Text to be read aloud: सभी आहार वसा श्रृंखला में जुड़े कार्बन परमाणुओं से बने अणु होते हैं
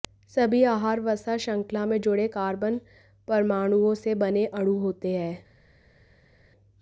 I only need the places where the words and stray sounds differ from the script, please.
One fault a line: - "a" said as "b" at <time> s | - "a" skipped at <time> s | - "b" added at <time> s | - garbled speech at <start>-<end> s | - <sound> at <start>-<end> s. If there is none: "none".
none